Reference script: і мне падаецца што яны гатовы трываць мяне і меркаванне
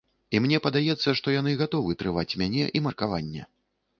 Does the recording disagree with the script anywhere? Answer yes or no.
no